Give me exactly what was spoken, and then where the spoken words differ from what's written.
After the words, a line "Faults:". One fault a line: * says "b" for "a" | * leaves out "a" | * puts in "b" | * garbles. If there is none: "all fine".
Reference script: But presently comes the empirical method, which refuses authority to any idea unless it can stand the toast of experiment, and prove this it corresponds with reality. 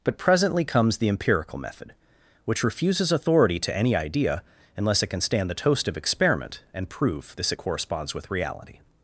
But presently comes the empirical method, which refuses authority to any idea unless it can stand the toast of experiment, and prove this it corresponds with reality.
Faults:
all fine